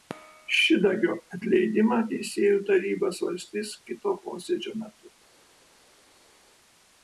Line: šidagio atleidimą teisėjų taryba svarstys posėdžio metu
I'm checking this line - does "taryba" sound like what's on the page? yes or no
yes